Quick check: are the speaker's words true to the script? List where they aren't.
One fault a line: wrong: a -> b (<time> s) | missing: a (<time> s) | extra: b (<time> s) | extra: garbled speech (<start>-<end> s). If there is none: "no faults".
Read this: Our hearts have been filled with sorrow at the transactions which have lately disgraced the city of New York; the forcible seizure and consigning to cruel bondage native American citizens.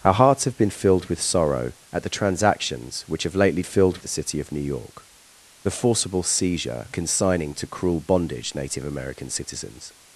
wrong: disgraced -> filled (3.6 s)
missing: and (6.9 s)